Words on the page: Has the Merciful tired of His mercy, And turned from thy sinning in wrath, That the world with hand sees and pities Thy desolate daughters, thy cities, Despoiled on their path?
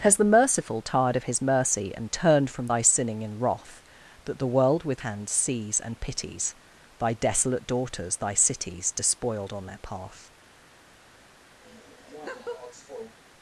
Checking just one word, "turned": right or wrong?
right